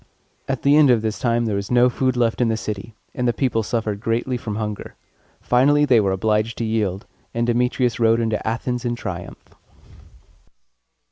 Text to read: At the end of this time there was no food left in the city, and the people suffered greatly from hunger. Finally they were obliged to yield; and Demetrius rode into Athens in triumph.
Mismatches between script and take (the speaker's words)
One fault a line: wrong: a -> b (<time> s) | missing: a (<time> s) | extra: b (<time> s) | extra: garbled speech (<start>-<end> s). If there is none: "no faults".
no faults